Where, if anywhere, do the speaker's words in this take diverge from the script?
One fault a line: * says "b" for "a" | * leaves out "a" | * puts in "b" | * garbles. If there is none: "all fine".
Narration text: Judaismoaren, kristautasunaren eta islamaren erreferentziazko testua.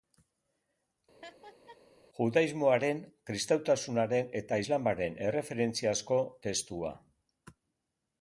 all fine